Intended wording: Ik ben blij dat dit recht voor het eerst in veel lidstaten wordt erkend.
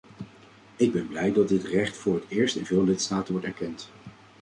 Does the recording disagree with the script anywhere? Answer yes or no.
no